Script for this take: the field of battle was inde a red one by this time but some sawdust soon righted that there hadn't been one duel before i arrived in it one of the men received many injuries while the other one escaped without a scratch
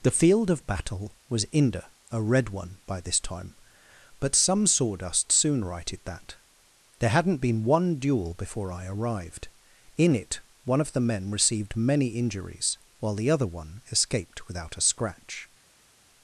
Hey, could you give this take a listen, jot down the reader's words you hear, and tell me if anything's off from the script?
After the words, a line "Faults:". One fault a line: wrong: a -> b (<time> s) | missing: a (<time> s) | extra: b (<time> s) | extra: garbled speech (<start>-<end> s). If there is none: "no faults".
the field of battle was inde a red one by this time but some sawdust soon righted that there hadn't been one duel before i arrived in it one of the men received many injuries while the other one escaped without a scratch
Faults:
no faults